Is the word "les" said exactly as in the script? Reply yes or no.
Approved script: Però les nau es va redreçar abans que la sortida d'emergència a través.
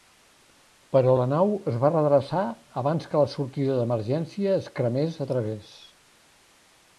no